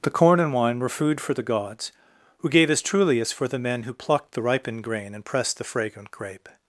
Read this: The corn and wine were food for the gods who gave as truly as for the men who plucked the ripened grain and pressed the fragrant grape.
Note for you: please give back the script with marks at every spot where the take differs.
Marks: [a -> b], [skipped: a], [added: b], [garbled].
The corn and wine were food for the gods who gave as truly as for the men who plucked the ripened grain and pressed the fragrant grape.